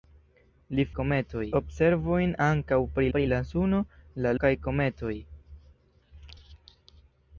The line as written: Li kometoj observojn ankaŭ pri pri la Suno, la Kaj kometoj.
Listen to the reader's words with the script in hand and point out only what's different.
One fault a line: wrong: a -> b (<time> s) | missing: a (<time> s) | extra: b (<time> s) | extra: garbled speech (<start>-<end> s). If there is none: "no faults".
no faults